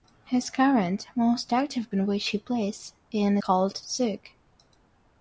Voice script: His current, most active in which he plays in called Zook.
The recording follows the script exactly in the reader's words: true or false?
true